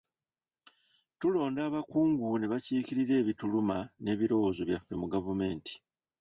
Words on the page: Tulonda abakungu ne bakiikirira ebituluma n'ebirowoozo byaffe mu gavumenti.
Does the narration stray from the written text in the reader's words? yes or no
no